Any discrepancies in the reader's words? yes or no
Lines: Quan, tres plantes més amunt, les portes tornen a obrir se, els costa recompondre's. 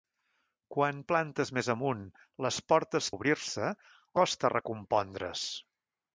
yes